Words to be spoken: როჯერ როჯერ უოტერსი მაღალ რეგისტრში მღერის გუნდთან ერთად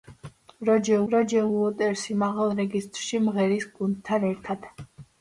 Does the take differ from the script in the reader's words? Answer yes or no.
no